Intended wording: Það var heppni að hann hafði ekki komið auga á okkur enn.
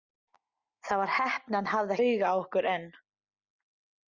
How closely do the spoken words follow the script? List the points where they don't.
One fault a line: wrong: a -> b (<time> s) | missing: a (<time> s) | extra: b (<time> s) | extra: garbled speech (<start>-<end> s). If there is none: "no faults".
missing: ekki komið (1.9 s)